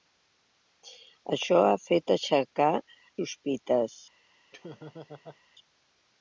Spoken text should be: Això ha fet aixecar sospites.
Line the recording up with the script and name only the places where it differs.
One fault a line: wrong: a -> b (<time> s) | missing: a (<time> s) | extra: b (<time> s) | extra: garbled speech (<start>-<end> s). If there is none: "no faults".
no faults